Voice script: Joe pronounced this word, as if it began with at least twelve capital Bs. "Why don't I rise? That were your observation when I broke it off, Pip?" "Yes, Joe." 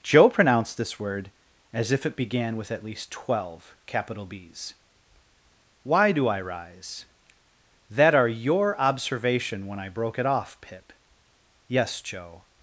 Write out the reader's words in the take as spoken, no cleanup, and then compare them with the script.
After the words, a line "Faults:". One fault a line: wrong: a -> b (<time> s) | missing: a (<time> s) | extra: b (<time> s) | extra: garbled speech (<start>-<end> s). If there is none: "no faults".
Joe pronounced this word, as if it began with at least twelve capital Bs. "Why do I rise? That are your observation when I broke it off, Pip?" "Yes, Joe."
Faults:
wrong: don't -> do (6.1 s)
wrong: were -> are (8.1 s)